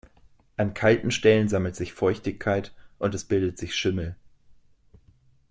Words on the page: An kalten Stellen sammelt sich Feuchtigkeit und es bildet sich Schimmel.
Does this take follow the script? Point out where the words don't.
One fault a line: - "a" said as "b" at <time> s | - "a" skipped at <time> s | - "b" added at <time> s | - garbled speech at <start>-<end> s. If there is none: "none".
none